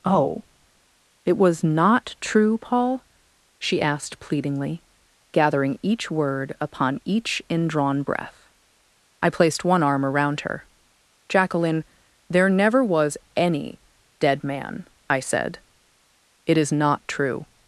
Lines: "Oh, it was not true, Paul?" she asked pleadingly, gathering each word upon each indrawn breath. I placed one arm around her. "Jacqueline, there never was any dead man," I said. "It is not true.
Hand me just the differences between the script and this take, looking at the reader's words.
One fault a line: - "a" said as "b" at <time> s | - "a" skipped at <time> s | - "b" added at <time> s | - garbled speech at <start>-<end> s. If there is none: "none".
none